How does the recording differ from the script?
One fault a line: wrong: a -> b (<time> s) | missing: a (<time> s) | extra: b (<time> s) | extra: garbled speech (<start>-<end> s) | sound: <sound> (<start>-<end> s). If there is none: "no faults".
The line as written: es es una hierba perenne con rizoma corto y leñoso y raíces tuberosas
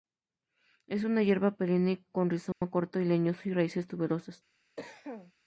missing: es (1.0 s)
sound: dropout (2.5-2.6 s)
sound: cough (4.8-5.3 s)